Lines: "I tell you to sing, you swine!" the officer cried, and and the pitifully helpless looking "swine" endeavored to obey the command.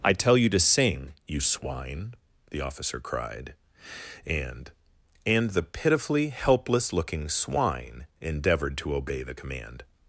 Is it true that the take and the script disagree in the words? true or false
false